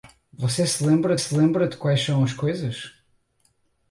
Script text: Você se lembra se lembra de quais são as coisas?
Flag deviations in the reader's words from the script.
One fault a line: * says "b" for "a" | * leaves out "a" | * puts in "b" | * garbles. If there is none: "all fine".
all fine